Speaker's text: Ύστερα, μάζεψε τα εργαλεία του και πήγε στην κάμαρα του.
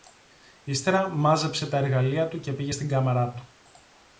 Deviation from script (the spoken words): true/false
false